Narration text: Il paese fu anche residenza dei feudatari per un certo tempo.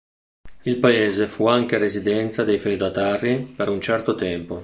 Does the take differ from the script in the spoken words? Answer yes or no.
no